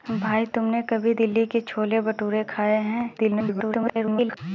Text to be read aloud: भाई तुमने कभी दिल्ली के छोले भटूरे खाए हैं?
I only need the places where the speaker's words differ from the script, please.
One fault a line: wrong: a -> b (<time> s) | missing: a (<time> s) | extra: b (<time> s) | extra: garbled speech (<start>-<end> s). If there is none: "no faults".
extra: garbled speech (3.2-4.4 s)